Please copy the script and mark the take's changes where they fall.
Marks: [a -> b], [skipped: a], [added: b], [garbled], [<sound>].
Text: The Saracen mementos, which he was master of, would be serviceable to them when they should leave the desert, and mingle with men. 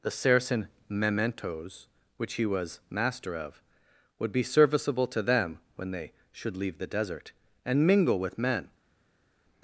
The Saracen mementos, which he was master of, would be serviceable to them when they should leave the desert, and mingle with men.